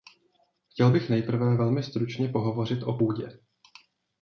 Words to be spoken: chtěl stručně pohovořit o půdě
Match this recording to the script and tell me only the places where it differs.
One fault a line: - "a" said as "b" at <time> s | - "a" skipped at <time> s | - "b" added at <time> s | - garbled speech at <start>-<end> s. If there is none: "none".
- "bych nejprve velmi" added at 0.9 s